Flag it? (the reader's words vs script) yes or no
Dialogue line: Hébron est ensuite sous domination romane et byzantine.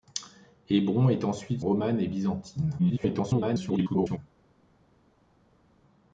yes